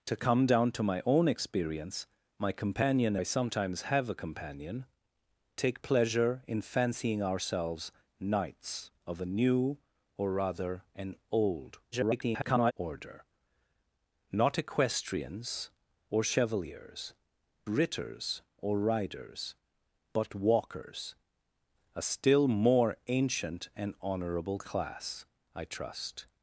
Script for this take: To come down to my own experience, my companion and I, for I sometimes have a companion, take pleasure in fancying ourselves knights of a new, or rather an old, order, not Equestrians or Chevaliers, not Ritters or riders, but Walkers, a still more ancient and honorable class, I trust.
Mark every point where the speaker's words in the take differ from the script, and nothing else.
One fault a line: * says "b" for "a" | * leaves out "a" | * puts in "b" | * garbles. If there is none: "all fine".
* leaves out "and"
* leaves out "for I"
* garbles
* leaves out "not"